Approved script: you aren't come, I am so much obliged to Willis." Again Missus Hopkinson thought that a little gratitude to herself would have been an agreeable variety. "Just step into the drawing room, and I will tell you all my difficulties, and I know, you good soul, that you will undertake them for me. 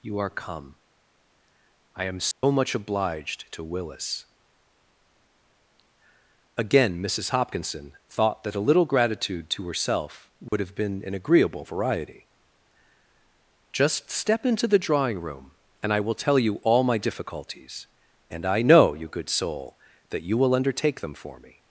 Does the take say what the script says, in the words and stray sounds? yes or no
no